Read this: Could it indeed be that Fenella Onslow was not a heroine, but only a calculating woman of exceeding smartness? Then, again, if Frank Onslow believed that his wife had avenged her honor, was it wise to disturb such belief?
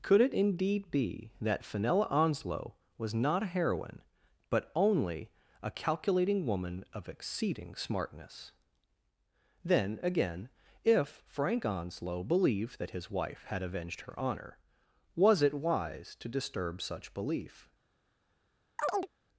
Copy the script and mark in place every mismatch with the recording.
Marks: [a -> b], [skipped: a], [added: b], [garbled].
Could it indeed be that Fenella Onslow was not a heroine, but only a calculating woman of exceeding smartness? Then, again, if Frank Onslow believed that his wife had avenged her honor, was it wise to disturb such belief?